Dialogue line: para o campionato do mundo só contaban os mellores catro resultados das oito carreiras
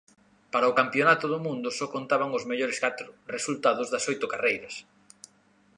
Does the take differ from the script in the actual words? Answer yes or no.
no